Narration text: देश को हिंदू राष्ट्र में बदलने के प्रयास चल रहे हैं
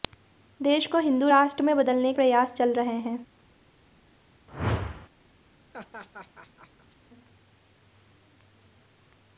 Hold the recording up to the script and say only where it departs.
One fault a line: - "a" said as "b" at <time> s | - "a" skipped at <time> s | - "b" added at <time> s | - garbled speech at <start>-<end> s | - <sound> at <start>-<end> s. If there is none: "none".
- "के" skipped at 2.1 s
- whoosh at 4.5-5.1 s
- laugh at 5.7-7.0 s